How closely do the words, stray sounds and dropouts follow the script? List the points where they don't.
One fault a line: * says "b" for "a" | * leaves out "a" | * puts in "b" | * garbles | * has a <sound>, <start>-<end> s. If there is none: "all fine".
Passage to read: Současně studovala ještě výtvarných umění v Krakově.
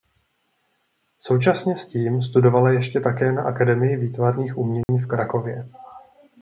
* puts in "s tím"
* puts in "také na Akademii"
* has a dropout, 4.8-4.9 s